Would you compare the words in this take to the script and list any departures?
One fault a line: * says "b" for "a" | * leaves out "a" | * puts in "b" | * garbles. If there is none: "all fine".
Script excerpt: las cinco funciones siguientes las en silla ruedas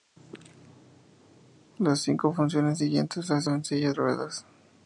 all fine